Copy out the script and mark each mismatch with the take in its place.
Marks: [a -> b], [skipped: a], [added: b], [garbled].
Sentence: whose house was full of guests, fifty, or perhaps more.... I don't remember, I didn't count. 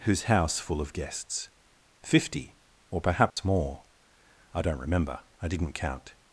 whose house [skipped: was] full of guests, fifty, or perhaps more.... I don't remember, I didn't count.